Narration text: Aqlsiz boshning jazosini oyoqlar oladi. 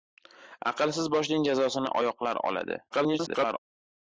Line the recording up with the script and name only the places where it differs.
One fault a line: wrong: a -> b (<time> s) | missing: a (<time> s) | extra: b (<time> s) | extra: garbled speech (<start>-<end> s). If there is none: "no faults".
extra: garbled speech (2.9-3.6 s)